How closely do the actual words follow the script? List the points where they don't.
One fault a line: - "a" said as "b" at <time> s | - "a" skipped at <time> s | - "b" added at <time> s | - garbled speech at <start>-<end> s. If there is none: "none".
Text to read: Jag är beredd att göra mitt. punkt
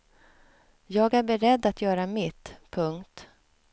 none